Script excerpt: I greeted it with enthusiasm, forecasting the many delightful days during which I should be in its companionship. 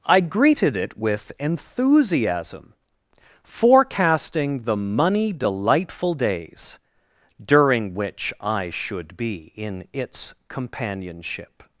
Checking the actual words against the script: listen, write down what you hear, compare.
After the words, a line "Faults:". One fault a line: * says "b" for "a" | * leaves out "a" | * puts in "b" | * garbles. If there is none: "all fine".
I greeted it with enthusiasm, forecasting the money delightful days during which I should be in its companionship.
Faults:
* says "money" for "many"